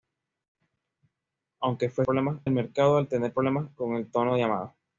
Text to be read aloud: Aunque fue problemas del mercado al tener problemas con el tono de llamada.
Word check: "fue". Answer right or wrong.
right